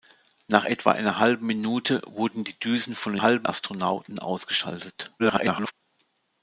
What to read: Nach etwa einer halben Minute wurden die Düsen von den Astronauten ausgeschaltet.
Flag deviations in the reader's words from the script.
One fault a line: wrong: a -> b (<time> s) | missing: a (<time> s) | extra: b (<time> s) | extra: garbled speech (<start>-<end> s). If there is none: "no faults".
wrong: den -> halben (3.2 s)
extra: garbled speech (5.2-5.7 s)